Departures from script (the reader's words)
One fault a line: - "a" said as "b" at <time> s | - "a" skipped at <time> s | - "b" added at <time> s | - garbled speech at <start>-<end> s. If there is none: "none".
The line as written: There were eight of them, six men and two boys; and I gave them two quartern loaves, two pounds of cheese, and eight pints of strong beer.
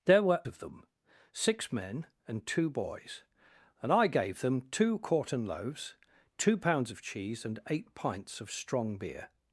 - "eight" skipped at 0.4 s